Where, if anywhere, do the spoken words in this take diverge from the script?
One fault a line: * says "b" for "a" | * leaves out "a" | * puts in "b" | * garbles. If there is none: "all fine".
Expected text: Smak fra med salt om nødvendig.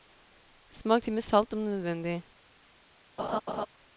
* says "til" for "fra"